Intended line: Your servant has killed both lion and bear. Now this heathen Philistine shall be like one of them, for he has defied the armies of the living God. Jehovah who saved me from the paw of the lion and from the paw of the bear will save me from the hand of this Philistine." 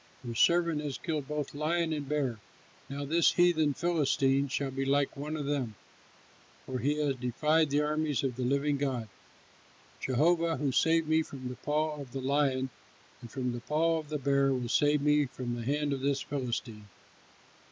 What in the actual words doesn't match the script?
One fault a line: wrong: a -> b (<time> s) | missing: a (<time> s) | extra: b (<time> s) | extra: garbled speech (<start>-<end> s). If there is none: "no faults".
no faults